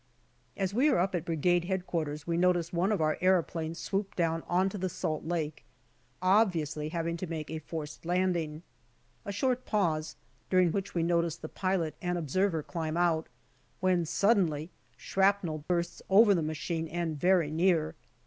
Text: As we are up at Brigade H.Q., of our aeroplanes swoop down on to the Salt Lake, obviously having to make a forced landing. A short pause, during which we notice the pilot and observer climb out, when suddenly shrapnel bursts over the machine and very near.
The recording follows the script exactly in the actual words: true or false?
false